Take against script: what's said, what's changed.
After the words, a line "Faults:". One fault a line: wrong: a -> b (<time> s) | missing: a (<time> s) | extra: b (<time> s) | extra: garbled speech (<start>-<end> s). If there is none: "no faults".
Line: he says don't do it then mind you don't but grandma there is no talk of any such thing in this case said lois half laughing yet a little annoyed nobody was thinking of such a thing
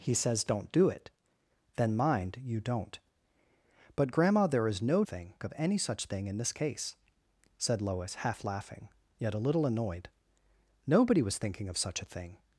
he says don't do it then mind you don't but grandma there is no thing of any such thing in this case said lois half laughing yet a little annoyed nobody was thinking of such a thing
Faults:
wrong: talk -> thing (5.1 s)